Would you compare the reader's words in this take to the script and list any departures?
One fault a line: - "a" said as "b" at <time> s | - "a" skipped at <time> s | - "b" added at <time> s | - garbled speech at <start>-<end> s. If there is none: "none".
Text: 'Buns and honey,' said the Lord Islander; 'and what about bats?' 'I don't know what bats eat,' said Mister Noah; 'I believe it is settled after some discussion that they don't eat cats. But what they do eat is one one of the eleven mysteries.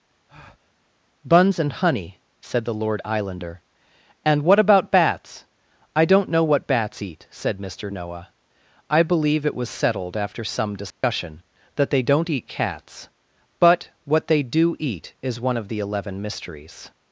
- "is" said as "was" at 9.5 s
- "one" skipped at 15.6 s